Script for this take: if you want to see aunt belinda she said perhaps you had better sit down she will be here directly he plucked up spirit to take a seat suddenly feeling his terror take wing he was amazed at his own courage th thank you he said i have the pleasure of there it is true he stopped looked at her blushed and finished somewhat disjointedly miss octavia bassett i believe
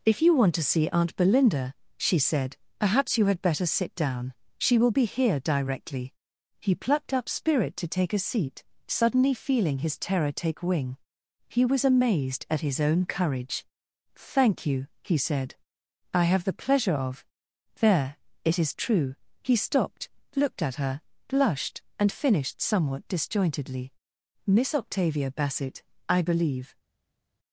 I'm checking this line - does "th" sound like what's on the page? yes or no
no